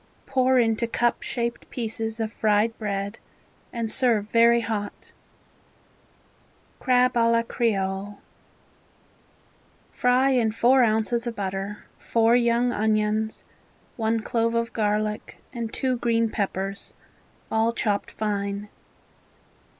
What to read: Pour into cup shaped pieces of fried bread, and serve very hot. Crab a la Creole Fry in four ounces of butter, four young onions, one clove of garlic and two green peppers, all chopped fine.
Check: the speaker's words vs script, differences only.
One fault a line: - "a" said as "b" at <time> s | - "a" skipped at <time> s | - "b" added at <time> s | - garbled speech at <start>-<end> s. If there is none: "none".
none